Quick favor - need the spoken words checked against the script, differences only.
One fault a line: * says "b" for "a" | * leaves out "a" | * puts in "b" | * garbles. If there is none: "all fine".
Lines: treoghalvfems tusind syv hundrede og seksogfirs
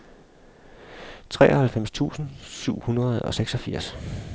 all fine